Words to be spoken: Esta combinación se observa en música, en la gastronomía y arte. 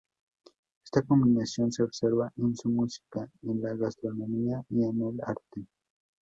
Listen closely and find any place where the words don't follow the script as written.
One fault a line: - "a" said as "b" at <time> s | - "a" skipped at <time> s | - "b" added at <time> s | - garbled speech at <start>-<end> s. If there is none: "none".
- "su" added at 2.6 s
- "en el" added at 4.8 s